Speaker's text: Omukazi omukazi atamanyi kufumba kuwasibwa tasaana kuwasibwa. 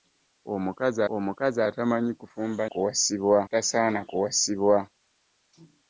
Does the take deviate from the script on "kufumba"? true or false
false